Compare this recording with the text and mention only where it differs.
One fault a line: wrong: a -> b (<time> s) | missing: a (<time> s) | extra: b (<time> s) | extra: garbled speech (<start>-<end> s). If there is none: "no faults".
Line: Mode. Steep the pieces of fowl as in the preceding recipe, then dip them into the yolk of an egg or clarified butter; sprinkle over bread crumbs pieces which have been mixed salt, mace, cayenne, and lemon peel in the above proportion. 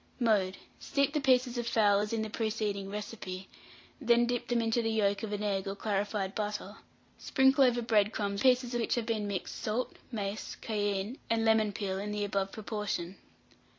no faults